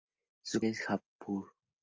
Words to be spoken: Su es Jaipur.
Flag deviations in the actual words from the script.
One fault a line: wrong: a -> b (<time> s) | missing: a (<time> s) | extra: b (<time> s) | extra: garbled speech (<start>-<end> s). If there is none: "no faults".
no faults